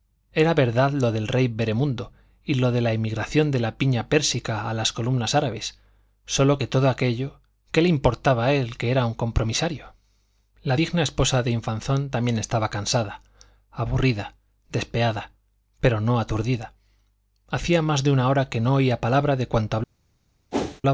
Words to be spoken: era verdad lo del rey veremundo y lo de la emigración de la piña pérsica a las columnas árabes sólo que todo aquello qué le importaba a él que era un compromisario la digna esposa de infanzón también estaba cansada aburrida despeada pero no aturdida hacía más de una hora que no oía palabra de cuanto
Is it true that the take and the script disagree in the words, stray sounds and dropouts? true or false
true